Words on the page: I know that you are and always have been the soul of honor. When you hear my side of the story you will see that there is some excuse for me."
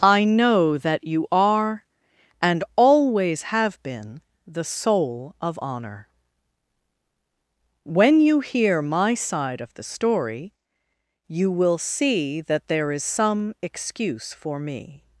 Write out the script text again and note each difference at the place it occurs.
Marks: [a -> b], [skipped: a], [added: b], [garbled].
I know that you are and always have been the soul of honor. When you hear my side of the story you will see that there is some excuse for me."